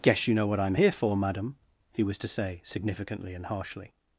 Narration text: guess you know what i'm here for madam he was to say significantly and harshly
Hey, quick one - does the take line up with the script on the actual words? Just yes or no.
yes